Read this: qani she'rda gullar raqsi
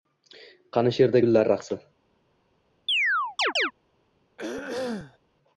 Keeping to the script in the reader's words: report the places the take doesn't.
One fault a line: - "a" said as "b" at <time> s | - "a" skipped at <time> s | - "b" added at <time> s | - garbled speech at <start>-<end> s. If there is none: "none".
none